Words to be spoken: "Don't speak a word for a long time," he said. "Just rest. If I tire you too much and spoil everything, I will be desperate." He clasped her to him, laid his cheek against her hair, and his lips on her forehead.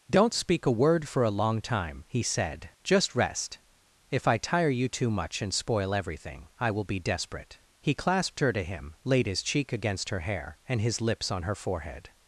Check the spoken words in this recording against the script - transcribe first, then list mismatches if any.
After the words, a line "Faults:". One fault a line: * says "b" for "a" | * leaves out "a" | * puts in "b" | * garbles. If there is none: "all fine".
"Don't speak a word for a long time," he said. "Just rest. If I tire you too much and spoil everything, I will be desperate." He clasped her to him, laid his cheek against her hair, and his lips on her forehead.
Faults:
all fine